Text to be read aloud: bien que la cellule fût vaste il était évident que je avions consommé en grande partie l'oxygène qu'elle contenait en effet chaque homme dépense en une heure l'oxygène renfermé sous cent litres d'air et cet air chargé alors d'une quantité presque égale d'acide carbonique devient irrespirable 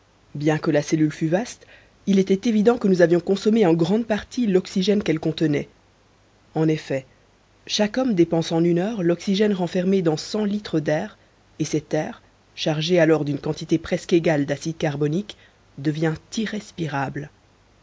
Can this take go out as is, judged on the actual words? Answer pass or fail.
fail